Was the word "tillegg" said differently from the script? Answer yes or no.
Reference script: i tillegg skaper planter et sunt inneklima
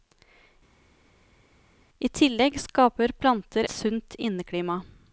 no